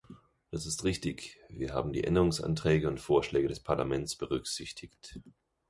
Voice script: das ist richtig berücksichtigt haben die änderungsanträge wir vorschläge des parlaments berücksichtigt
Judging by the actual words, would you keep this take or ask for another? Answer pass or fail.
fail